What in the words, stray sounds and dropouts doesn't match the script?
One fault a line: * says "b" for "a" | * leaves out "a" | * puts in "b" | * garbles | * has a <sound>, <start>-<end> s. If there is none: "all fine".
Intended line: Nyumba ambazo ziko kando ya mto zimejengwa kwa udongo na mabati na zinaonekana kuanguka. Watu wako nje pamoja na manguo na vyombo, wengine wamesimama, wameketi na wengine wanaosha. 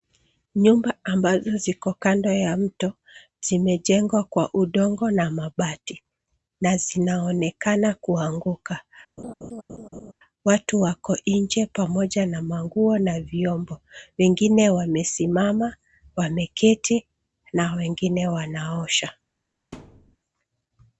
* has a laugh, 9.2-10.1 s
* has a thud, 19.7-20.2 s